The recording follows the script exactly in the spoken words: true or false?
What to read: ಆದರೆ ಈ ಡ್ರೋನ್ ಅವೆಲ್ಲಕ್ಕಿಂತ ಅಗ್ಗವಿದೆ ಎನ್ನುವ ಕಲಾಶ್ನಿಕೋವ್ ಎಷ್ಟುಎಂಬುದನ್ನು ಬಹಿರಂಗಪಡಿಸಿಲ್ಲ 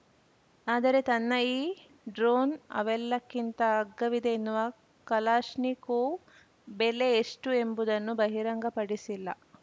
false